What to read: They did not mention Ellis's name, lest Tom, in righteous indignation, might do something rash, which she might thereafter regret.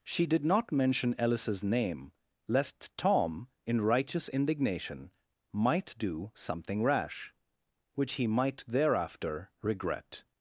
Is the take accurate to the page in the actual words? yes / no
no